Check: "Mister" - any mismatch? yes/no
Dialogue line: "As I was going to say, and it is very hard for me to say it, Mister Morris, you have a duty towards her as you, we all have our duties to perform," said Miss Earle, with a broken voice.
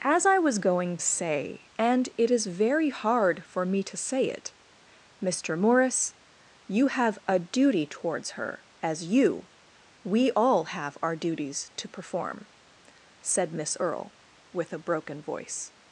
no